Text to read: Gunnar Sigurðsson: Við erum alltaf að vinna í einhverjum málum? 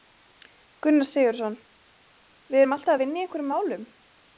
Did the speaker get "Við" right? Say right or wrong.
right